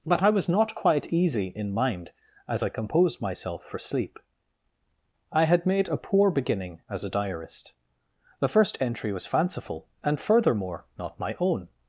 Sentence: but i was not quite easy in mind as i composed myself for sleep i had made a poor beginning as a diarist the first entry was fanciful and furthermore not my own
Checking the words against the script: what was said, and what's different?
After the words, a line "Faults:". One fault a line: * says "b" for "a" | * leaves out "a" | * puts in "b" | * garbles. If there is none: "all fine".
but i was not quite easy in mind as i composed myself for sleep i had made a poor beginning as a diarist the first entry was fanciful and furthermore not my own
Faults:
all fine